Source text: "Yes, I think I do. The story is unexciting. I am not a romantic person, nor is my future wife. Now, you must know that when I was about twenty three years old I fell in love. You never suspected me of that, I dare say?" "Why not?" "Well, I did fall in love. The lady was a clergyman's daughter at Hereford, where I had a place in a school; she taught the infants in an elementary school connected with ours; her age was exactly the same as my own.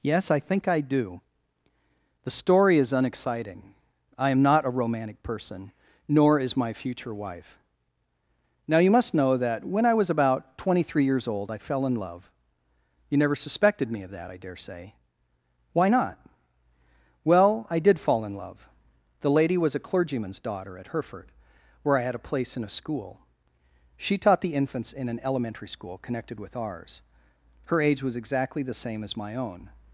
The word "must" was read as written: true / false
true